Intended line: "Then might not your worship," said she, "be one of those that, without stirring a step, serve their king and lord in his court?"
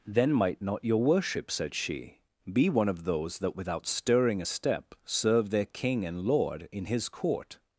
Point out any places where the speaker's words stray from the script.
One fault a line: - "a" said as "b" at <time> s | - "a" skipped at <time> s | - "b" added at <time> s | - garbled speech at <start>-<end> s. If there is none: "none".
none